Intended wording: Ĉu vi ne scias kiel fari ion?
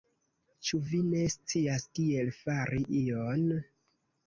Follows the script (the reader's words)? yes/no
yes